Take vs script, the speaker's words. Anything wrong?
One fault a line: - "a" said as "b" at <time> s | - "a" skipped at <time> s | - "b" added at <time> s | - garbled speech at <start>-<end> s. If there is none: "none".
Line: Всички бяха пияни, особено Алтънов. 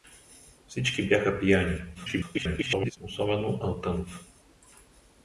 - garbled speech at 1.9-3.0 s